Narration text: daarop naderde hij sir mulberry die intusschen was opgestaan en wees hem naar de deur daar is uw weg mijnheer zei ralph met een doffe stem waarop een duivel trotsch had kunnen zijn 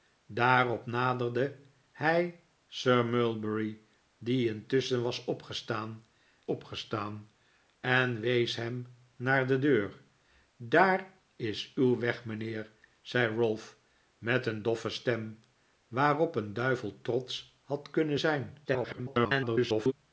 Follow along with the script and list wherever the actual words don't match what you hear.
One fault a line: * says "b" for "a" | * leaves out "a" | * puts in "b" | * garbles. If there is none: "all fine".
* puts in "opgestaan"
* garbles